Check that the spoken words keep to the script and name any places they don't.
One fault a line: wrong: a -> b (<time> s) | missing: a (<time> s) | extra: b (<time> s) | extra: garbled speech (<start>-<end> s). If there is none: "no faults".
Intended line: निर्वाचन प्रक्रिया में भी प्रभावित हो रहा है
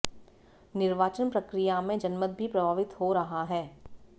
extra: जनमत (2.0 s)